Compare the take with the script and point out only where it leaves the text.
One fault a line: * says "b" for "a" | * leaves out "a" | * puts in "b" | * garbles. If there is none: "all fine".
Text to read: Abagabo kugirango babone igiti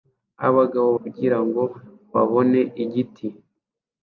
all fine